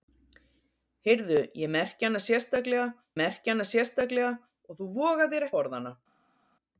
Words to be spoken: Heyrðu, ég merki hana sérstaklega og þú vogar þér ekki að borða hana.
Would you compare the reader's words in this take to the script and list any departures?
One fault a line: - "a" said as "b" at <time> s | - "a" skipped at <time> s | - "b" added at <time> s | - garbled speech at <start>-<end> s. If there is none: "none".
- "merki hana sérstaklega" added at 3.2 s
- "ekki" skipped at 5.5 s